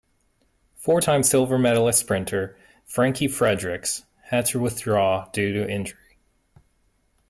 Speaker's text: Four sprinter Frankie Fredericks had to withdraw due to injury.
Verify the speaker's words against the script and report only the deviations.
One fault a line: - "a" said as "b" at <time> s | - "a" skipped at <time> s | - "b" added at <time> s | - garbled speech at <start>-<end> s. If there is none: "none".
- "time silver medalist" added at 1.0 s